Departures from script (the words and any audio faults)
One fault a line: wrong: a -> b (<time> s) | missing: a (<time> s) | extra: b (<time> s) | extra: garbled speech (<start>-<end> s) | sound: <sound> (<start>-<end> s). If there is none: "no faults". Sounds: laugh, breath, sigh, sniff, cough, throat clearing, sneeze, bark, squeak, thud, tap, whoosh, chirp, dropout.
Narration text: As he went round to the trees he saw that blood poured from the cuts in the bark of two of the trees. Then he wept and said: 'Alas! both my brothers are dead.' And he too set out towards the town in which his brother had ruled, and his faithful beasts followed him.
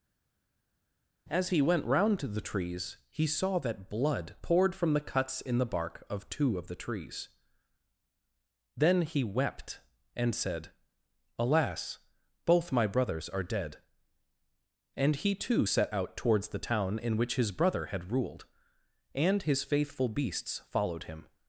no faults